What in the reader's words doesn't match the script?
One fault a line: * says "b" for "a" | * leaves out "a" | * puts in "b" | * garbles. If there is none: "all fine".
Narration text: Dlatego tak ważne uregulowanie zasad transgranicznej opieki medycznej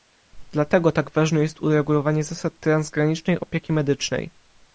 * puts in "jest"